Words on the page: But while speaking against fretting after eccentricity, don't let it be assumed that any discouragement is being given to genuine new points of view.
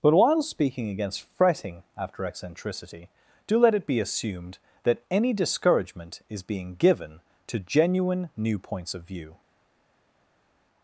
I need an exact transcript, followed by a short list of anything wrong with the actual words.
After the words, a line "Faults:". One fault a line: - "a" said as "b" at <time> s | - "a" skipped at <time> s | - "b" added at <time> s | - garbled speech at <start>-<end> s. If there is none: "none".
But while speaking against fretting after eccentricity, do let it be assumed that any discouragement is being given to genuine new points of view.
Faults:
- "don't" said as "do" at 3.5 s